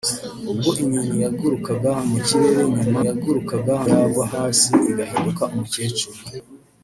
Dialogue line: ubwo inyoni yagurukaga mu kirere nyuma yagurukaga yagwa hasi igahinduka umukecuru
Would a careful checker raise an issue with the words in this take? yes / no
no